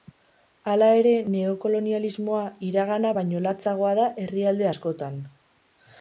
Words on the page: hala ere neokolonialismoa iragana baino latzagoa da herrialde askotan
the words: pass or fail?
pass